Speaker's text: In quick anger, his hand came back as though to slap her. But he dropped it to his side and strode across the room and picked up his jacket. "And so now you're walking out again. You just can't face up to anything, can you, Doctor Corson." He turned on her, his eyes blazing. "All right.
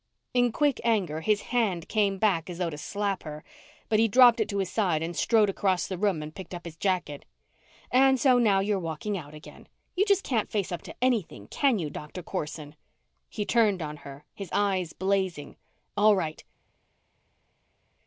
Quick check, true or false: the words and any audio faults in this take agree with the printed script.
true